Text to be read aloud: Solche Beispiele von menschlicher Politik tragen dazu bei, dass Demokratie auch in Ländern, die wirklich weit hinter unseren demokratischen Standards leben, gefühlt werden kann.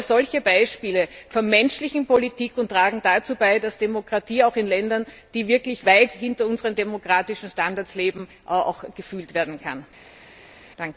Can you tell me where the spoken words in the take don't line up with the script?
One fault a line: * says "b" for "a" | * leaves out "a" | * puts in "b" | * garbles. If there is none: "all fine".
all fine